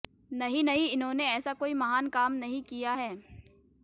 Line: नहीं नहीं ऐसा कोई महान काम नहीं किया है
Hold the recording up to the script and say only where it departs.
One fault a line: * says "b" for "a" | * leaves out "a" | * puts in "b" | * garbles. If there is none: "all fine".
* puts in "इन्होंने"